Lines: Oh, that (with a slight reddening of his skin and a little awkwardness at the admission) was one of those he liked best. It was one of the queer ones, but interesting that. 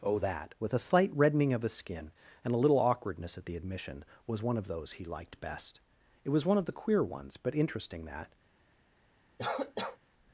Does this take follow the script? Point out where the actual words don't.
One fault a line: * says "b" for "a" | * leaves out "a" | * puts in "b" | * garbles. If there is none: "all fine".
all fine